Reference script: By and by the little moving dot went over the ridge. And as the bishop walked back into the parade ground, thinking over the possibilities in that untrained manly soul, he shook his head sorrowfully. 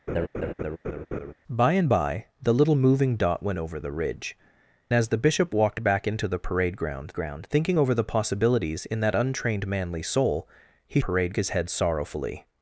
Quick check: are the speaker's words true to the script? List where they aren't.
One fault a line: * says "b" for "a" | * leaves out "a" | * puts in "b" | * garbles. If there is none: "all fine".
* leaves out "And"
* puts in "ground"
* says "parade" for "shook"